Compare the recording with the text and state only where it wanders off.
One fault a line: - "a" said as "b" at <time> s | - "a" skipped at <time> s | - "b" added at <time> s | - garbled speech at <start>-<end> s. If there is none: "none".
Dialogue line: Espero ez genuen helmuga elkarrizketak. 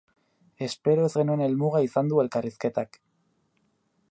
- "izan du" added at 1.9 s